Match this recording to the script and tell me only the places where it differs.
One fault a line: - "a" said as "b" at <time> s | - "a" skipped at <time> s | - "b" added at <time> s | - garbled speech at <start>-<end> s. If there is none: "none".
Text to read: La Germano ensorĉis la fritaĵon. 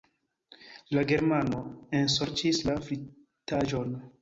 none